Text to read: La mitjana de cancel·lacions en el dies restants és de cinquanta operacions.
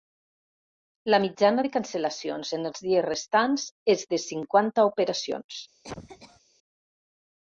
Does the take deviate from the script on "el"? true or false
true